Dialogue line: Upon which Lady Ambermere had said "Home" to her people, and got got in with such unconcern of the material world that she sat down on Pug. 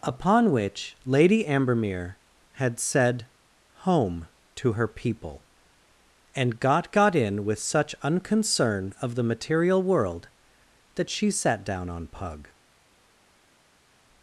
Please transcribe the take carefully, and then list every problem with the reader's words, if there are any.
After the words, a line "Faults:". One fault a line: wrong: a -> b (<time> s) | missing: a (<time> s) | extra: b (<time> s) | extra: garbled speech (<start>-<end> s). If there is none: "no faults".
Upon which Lady Ambermere had said "Home" to her people, and got got in with such unconcern of the material world that she sat down on Pug.
Faults:
no faults